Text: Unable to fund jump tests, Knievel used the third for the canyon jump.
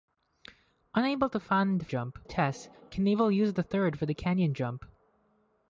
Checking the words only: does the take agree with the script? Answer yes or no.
yes